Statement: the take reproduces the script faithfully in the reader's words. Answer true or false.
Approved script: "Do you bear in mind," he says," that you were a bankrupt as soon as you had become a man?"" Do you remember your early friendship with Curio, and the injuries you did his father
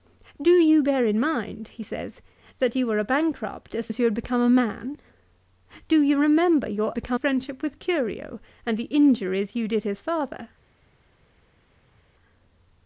false